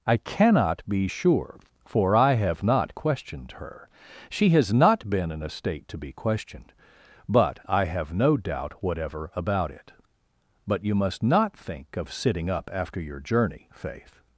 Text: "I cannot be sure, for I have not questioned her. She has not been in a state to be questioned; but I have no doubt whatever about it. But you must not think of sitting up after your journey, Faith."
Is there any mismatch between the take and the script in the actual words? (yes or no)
no